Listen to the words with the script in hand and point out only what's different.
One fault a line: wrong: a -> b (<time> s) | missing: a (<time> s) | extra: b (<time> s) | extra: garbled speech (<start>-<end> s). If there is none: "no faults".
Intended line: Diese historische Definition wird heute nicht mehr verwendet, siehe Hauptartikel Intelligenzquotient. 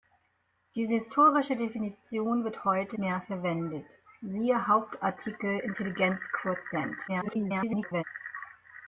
missing: nicht (3.0 s)
extra: garbled speech (7.1-8.0 s)